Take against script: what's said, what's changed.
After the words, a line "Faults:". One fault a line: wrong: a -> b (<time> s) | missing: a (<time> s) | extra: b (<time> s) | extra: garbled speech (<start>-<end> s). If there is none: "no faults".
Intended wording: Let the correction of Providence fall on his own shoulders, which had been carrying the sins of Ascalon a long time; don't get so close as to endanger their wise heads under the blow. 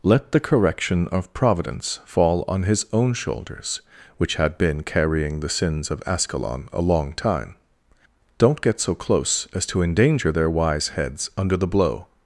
Let the correction of Providence fall on his own shoulders, which had been carrying the sins of Ascalon a long time; don't get so close as to endanger their wise heads under the blow.
Faults:
no faults